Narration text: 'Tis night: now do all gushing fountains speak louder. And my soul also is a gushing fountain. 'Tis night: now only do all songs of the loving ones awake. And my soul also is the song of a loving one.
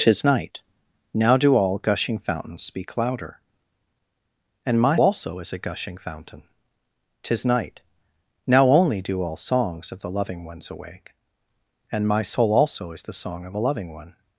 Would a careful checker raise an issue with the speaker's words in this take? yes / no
yes